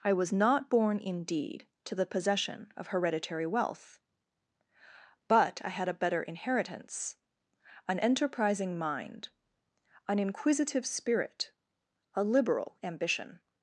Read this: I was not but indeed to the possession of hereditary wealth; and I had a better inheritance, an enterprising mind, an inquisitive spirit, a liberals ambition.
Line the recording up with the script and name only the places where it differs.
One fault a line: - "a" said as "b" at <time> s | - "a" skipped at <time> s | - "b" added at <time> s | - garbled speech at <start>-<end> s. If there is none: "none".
- "but" said as "born" at 0.7 s
- "and" said as "but" at 5.3 s
- "liberals" said as "liberal" at 12.2 s